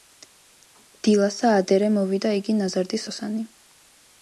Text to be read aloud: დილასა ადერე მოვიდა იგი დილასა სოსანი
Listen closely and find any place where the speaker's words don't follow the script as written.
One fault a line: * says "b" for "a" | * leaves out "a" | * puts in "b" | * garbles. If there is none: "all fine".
* says "ნაზარდი" for "დილასა"